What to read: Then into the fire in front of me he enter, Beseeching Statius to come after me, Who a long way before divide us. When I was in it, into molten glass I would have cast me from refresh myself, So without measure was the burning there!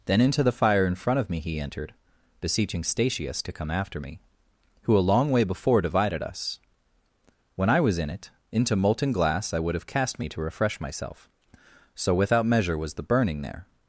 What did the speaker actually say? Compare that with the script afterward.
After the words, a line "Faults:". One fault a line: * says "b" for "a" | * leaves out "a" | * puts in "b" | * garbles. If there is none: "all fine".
Then into the fire in front of me he entered, Beseeching Statius to come after me, Who a long way before divided us. When I was in it, into molten glass I would have cast me to refresh myself, So without measure was the burning there!
Faults:
* says "entered" for "enter"
* says "divided" for "divide"
* says "to" for "from"